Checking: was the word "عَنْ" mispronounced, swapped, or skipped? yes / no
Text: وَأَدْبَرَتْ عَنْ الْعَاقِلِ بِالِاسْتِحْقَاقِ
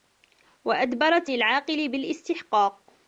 yes